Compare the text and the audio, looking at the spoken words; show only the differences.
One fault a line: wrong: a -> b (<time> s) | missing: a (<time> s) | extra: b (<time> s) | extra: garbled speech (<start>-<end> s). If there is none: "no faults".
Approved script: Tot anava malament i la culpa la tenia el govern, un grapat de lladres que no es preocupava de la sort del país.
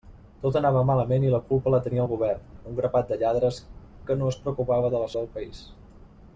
missing: sort (5.1 s)